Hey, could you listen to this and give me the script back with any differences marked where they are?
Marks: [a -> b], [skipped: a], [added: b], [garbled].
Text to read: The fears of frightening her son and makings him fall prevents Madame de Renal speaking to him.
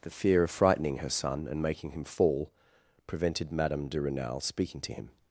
The [fears -> fear] of frightening her son and [makings -> making] him fall [prevents -> prevented] Madame de Renal speaking to him.